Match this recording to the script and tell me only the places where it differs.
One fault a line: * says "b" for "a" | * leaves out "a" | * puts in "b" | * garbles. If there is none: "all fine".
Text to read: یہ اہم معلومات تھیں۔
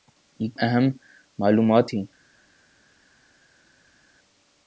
all fine